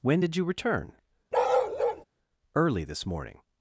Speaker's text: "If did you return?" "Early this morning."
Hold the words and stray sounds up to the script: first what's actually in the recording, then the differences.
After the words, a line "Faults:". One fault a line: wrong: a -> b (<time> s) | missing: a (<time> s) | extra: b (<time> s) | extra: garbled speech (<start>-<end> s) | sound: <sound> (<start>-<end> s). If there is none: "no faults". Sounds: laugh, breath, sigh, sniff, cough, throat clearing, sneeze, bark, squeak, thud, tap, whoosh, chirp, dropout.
"When did you return?" "Early this morning."
Faults:
wrong: If -> When (0.0 s)
sound: bark (1.3-2.0 s)